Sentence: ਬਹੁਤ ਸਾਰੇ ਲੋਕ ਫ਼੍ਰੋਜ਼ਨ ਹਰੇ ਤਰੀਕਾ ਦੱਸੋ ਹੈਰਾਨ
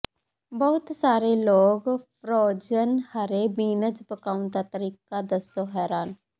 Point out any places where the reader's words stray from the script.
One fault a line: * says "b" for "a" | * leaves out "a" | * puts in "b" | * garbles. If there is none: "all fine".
* puts in "ਬੀਨਜ਼ ਪਕਾਉਣ ਦਾ"